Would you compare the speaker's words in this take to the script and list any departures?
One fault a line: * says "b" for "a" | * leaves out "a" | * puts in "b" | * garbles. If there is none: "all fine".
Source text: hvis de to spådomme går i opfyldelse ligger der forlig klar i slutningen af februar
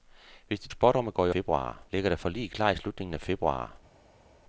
* leaves out "to"
* says "februar" for "opfyldelse"